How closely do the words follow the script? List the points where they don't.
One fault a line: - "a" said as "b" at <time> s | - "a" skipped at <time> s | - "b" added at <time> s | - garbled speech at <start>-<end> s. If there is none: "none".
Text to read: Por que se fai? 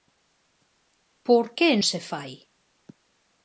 none